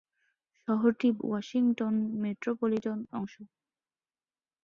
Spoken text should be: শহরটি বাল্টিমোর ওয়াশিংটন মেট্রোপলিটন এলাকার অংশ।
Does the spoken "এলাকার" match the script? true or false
false